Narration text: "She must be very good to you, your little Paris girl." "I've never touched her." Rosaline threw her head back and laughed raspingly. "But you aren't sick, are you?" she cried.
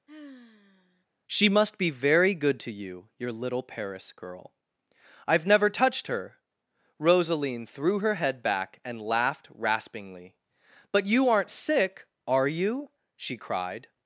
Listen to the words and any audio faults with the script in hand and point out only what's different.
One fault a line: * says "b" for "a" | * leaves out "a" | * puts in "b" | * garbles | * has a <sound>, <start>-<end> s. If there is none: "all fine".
* has a sigh, 0.1-1.1 s